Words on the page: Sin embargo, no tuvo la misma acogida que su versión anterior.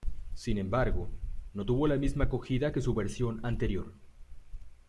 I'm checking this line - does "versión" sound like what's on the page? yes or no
yes